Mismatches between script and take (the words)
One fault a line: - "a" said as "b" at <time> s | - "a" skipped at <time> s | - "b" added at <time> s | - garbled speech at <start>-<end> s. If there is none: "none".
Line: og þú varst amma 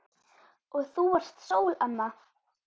- "sól" added at 1.5 s